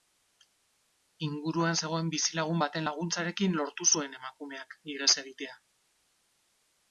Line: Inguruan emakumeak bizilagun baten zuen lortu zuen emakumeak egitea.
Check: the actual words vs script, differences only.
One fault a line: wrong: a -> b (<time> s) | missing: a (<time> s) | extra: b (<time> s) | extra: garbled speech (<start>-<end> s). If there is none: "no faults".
wrong: emakumeak -> zegoen (1.8 s)
wrong: zuen -> laguntzarekin (2.9 s)
extra: ihes (5.0 s)